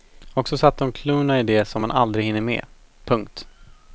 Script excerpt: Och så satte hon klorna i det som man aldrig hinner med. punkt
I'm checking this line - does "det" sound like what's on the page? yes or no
yes